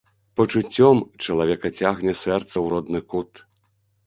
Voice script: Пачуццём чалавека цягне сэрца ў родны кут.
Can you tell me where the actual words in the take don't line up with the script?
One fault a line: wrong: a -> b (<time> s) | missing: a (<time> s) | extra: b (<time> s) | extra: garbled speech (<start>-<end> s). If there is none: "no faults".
no faults